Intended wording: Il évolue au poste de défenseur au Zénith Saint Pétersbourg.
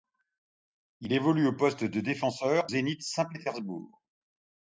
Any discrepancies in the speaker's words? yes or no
yes